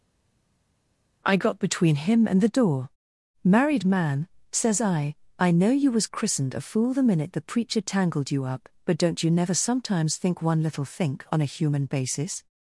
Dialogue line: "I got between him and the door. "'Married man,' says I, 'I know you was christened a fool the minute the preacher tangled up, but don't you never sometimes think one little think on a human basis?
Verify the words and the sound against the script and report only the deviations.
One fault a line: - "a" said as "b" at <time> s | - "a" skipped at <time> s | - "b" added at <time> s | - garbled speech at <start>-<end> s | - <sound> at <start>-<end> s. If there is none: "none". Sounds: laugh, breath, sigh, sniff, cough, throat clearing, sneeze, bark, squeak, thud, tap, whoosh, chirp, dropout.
- "you" added at 8.3 s